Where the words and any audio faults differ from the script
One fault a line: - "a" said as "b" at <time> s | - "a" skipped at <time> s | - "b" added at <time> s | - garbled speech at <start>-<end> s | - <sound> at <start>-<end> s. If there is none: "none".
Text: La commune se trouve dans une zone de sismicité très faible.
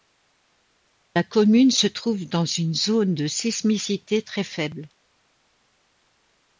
none